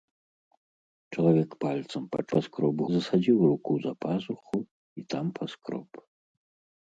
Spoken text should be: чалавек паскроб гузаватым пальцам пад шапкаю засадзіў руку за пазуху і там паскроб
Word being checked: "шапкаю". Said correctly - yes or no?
no